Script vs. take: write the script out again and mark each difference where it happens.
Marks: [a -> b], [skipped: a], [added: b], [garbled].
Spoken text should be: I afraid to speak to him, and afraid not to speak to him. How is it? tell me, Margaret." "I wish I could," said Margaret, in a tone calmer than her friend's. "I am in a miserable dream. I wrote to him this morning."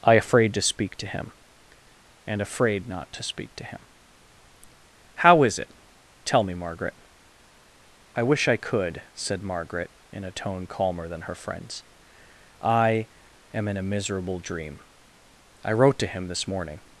I afraid to speak to him, and afraid not to speak to him. How is it? tell me, Margaret." "I wish I could," said Margaret, in a tone calmer than her friend's. "I am in a miserable dream. I wrote to him this morning."